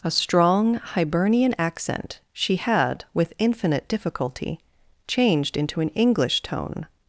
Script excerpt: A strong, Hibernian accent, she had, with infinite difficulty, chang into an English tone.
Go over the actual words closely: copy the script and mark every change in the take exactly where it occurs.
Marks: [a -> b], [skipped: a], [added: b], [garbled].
A strong, Hibernian accent, she had, with infinite difficulty, [chang -> changed] into an English tone.